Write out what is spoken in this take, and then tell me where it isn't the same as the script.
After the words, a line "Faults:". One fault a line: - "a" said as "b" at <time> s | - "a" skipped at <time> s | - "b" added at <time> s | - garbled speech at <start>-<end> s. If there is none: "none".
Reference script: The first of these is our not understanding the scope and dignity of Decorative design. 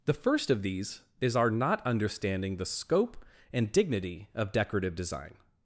The first of these is our not understanding the scope and dignity of Decorative design.
Faults:
none